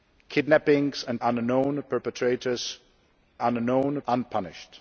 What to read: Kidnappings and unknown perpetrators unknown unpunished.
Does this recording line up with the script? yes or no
yes